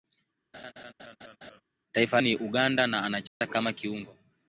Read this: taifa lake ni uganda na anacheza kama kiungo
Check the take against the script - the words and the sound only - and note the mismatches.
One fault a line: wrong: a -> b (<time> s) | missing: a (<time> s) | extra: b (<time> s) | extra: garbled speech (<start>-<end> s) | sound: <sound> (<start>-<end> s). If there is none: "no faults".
sound: laugh (0.5-1.6 s)
missing: lake (2.2 s)
sound: dropout (3.3-3.4 s)